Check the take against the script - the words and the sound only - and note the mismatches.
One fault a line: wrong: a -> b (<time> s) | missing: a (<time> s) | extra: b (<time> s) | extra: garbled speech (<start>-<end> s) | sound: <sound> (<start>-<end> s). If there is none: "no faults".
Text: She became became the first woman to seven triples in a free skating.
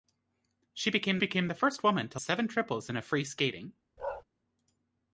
sound: bark (4.0-4.2 s)